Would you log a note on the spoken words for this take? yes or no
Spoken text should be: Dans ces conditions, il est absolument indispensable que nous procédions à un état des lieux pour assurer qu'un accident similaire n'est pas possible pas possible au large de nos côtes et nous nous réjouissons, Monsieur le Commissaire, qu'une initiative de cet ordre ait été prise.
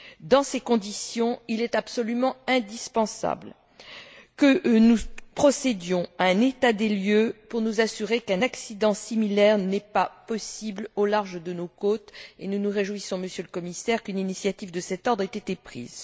yes